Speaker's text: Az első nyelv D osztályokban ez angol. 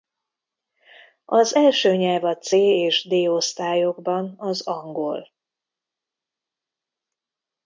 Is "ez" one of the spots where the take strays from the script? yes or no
yes